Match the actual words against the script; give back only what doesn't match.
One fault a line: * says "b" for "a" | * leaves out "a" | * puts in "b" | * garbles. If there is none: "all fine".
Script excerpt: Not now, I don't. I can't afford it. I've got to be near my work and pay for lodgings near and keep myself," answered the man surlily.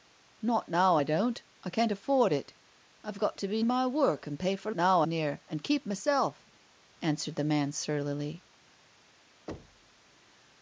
* leaves out "near"
* says "now" for "lodgings"